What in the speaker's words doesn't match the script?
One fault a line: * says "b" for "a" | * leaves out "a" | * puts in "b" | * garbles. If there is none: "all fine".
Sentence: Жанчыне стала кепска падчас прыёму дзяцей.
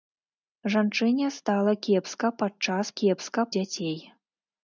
* says "кепска" for "прыёму"